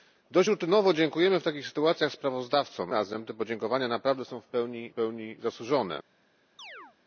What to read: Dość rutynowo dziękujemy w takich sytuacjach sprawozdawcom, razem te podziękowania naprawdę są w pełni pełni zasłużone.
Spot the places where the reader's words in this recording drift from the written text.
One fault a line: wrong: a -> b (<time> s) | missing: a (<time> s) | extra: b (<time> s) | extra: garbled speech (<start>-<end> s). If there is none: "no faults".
no faults